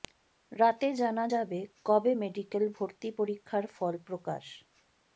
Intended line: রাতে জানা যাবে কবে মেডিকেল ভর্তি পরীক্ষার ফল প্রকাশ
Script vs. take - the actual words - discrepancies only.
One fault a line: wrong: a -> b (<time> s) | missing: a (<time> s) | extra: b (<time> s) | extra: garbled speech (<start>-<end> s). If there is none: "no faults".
no faults